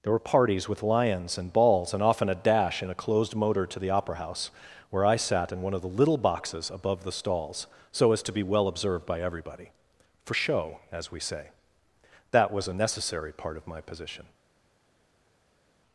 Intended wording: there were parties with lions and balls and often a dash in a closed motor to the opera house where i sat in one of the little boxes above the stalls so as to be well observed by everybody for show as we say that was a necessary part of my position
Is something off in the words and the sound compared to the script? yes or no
no